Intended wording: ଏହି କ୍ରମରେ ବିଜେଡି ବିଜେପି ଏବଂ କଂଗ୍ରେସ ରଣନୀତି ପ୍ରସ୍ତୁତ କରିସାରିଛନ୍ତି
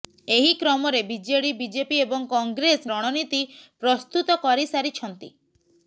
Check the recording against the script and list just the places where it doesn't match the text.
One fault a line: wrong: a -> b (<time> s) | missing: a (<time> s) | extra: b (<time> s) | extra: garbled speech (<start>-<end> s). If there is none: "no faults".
no faults